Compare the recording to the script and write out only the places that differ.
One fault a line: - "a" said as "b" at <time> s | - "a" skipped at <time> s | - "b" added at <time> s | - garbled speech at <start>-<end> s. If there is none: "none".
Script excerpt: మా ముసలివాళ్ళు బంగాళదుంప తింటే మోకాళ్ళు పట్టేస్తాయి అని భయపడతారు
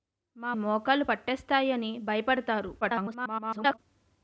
- "ముసలివాళ్ళు బంగాళదుంప తింటే" skipped at 0.5 s
- garbled speech at 2.8-3.8 s